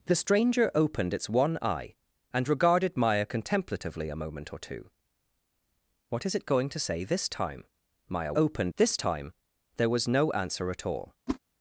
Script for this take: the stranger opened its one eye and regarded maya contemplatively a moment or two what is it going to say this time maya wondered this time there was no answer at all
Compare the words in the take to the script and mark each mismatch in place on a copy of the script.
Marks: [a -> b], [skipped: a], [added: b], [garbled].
the stranger opened its one eye and regarded maya contemplatively a moment or two what is it going to say this time maya [wondered -> opened] this time there was no answer at all